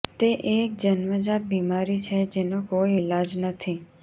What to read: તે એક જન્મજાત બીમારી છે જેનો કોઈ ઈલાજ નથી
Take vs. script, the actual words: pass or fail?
pass